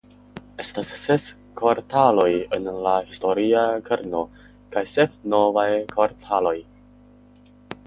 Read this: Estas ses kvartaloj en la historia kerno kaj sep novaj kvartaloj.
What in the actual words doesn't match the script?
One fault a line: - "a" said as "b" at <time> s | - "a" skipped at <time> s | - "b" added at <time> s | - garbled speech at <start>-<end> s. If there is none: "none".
none